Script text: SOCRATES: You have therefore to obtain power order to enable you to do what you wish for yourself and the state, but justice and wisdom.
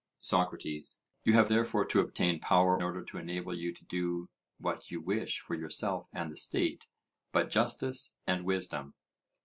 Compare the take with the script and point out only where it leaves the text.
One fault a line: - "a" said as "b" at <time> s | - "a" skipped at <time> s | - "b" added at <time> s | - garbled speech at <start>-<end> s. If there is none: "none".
none